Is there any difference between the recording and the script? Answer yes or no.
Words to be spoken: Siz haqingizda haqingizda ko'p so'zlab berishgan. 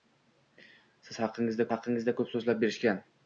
no